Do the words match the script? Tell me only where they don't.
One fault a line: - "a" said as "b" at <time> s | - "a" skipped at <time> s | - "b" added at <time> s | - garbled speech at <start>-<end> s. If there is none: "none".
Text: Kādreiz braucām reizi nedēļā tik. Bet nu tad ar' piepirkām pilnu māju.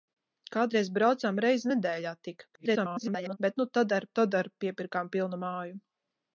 - garbled speech at 2.5-3.4 s
- "tad ar" added at 4.2 s